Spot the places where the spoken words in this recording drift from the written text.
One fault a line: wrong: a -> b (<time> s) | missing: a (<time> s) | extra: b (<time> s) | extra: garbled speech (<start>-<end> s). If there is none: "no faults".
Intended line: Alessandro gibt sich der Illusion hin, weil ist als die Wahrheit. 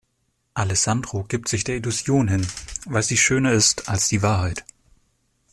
extra: sie schöner (3.0 s)